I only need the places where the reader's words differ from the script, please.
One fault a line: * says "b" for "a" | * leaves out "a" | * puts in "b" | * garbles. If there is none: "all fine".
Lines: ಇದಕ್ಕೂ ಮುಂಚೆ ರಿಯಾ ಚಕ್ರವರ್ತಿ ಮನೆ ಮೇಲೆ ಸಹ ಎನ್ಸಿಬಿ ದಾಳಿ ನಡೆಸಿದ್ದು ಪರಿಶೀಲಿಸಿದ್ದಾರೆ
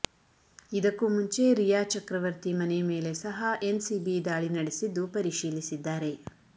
all fine